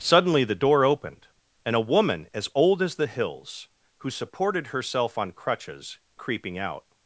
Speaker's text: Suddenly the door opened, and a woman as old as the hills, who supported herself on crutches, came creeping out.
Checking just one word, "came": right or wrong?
wrong